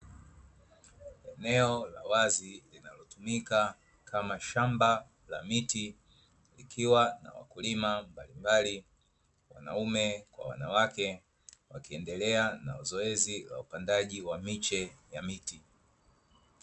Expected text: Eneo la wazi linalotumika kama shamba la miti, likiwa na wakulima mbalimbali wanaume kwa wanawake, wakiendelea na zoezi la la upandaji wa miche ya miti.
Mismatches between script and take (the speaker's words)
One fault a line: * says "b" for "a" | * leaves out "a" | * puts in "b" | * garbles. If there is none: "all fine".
* leaves out "la"